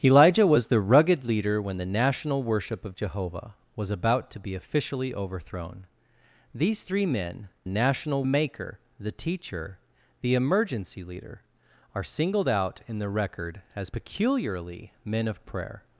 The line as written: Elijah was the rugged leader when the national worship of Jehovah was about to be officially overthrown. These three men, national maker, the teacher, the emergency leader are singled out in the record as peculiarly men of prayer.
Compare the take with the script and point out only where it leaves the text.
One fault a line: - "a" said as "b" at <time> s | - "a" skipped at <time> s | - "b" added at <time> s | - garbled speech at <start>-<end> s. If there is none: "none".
none